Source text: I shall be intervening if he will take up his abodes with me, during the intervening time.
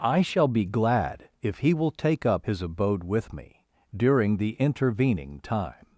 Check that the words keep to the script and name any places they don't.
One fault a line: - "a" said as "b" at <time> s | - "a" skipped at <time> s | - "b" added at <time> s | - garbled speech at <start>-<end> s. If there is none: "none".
- "intervening" said as "glad" at 0.7 s
- "abodes" said as "abode" at 2.6 s